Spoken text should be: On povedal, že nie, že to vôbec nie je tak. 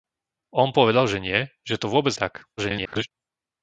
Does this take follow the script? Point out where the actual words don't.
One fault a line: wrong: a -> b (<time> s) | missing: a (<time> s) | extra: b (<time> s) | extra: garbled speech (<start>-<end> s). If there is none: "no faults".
missing: nie (2.2 s)
extra: garbled speech (2.6-3.1 s)